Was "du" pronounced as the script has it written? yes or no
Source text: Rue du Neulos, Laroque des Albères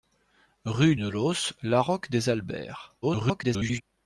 no